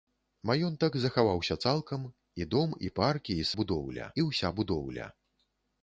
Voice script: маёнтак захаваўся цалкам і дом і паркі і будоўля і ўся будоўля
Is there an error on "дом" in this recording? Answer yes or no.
no